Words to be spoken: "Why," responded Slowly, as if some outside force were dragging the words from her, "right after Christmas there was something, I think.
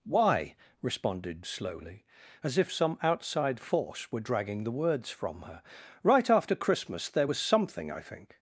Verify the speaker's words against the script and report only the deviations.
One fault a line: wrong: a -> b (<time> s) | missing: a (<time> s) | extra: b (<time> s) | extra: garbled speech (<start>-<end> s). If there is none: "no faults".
no faults